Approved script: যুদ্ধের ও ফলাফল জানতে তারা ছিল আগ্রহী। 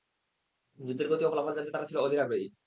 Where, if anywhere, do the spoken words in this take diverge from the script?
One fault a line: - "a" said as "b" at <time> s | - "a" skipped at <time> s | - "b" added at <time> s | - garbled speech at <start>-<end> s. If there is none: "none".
- "গতি" added at 1.1 s
- "অধীর" added at 2.0 s